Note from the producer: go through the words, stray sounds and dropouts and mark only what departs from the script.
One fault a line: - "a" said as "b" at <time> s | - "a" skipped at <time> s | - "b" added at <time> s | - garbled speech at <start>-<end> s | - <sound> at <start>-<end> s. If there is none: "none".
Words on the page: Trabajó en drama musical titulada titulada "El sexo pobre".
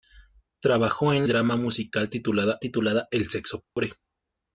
- dropout at 3.6-3.8 s